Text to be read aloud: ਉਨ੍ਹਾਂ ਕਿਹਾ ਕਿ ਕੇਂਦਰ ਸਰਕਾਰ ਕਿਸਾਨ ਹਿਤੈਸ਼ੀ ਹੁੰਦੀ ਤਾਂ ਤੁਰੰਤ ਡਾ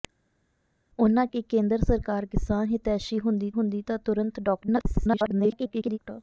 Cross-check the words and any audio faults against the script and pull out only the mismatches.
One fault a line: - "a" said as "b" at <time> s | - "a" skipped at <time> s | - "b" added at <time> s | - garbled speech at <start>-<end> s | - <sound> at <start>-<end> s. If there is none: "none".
- "ਕਿਹਾ" skipped at 1.3 s
- "ਹੁੰਦੀ" added at 3.5 s
- garbled speech at 4.6-6.0 s